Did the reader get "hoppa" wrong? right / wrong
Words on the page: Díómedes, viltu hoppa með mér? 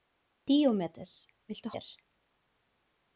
wrong